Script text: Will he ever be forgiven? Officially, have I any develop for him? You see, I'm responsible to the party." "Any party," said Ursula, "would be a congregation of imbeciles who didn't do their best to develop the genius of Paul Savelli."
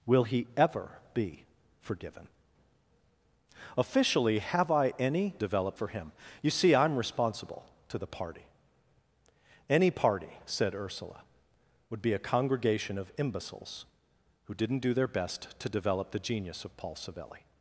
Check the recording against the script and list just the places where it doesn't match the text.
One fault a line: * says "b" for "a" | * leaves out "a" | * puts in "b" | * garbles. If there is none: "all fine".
all fine